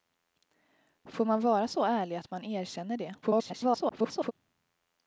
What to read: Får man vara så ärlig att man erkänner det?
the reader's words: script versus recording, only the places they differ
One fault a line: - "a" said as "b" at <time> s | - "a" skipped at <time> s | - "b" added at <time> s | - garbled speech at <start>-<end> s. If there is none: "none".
- garbled speech at 3.2-4.3 s